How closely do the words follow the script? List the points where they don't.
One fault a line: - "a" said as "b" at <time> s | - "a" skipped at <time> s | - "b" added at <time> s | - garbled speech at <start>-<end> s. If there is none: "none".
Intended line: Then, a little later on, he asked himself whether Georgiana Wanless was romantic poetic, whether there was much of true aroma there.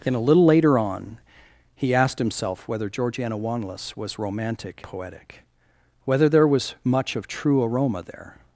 none